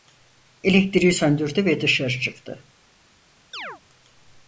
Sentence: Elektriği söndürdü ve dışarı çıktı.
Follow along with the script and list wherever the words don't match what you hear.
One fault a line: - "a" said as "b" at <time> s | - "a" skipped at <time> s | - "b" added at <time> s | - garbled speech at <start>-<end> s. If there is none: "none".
none